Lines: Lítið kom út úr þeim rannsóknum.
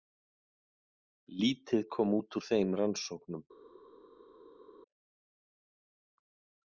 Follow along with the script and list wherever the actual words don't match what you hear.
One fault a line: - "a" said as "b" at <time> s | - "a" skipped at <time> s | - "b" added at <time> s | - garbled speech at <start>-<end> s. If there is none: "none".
none